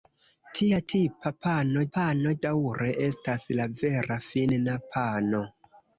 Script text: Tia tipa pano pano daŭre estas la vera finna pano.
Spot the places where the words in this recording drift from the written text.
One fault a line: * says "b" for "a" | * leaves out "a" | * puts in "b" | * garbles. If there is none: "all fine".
all fine